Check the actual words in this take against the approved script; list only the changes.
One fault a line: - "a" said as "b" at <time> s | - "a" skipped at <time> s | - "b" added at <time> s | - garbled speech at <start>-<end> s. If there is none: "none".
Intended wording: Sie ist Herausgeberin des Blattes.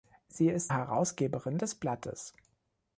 none